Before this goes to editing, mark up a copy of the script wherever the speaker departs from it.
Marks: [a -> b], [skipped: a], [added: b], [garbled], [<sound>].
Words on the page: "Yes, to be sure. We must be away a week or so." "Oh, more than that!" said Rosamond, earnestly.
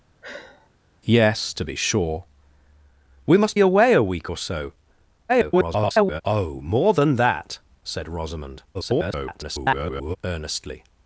[sigh] "Yes, to be sure. We must [skipped: be] away a week or so." [garbled] "Oh, more than that!" said Rosamond, [garbled] earnestly.